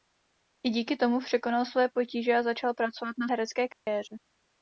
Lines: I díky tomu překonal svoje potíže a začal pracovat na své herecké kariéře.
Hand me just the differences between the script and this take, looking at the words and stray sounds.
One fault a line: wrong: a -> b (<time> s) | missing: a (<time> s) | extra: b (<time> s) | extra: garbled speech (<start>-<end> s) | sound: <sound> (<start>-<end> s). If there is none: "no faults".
missing: své (3.3 s)
sound: dropout (3.7-3.9 s)